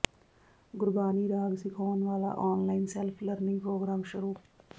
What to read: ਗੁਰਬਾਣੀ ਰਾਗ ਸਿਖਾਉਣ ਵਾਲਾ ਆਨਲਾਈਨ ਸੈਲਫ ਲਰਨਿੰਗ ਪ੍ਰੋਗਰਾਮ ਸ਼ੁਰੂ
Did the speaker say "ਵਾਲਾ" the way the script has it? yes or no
yes